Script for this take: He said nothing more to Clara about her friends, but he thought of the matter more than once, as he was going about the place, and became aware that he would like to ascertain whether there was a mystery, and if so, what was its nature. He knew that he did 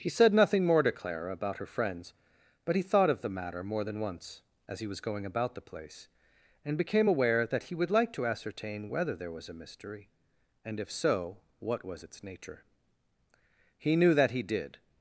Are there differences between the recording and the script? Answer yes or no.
no